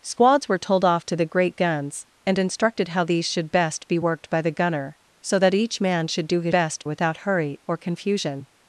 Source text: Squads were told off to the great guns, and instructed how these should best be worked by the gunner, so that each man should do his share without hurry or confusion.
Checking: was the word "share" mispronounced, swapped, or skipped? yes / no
yes